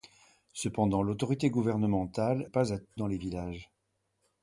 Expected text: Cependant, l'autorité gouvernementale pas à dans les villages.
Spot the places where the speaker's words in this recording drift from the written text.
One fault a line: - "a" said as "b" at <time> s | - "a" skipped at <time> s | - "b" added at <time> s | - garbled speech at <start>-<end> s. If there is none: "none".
none